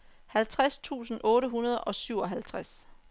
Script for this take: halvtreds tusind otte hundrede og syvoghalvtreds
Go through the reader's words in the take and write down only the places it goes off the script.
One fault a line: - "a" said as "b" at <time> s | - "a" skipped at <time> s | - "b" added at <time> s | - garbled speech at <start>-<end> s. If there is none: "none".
none